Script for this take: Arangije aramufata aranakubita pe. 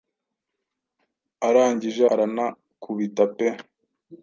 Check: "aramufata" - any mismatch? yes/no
yes